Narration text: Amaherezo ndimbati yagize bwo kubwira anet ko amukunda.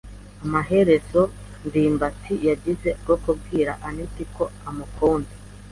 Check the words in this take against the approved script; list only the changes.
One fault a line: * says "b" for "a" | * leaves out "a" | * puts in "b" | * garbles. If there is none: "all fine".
all fine